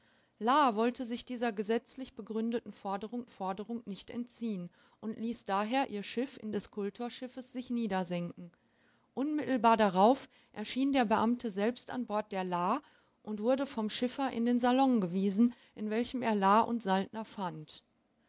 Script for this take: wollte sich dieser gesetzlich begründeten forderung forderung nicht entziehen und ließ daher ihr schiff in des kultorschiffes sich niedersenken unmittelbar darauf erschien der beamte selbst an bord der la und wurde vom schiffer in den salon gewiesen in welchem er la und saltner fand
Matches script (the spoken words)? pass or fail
pass